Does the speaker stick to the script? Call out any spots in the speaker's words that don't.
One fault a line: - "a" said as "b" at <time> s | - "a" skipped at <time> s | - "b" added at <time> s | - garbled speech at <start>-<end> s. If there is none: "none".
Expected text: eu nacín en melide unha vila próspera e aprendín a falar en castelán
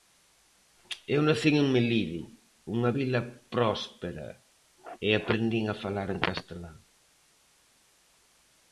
none